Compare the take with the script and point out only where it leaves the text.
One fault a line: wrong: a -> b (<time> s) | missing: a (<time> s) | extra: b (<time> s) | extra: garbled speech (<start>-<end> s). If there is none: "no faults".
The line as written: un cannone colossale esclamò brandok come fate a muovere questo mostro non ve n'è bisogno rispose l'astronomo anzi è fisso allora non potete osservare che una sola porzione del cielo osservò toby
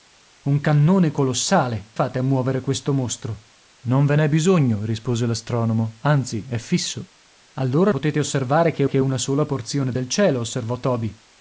missing: esclamò brandok come (1.9 s)
missing: non (7.9 s)
extra: che (8.8 s)